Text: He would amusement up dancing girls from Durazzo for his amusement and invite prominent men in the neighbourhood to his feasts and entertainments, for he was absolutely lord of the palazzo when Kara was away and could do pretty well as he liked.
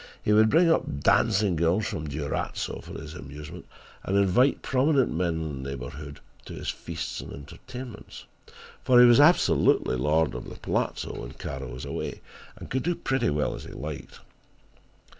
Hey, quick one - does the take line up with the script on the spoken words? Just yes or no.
no